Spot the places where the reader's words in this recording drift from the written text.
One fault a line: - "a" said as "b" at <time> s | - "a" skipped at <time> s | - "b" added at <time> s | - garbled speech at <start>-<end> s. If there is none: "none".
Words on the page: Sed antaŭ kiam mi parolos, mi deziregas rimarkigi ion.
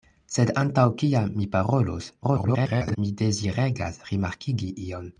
- garbled speech at 2.2-3.0 s